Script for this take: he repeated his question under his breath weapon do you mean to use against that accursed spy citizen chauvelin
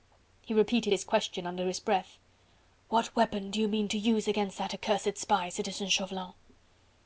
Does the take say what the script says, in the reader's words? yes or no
no